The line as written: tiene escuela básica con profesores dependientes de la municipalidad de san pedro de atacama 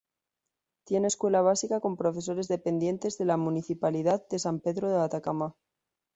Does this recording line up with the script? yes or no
yes